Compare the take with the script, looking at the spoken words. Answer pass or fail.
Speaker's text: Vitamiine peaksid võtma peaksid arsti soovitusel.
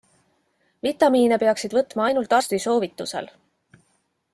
fail